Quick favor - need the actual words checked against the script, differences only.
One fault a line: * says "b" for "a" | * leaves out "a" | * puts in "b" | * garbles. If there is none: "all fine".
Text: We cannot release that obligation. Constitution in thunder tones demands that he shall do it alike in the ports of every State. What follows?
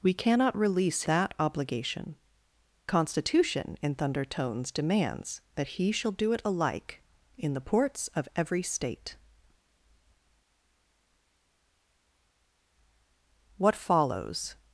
all fine